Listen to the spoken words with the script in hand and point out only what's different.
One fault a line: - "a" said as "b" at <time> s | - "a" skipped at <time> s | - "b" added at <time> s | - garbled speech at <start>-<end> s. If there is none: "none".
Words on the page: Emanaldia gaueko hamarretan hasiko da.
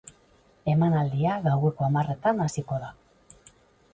none